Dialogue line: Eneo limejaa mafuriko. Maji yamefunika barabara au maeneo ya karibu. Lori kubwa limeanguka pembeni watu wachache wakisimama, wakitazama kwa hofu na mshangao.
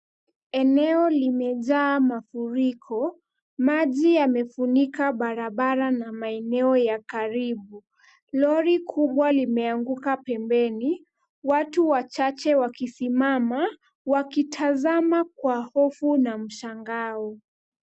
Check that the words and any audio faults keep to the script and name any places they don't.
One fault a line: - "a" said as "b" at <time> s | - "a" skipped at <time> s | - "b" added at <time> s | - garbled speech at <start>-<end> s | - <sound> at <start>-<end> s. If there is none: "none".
- "au" said as "na" at 5.9 s